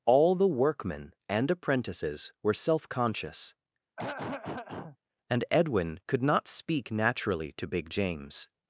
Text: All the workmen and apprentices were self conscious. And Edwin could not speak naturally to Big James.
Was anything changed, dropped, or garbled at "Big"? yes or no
no